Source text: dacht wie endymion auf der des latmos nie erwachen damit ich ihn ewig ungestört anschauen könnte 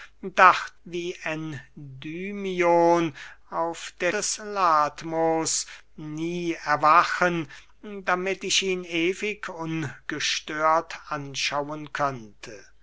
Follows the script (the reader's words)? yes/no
yes